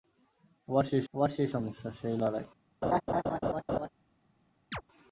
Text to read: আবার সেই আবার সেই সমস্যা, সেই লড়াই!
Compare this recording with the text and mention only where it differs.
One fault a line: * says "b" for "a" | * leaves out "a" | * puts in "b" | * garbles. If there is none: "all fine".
all fine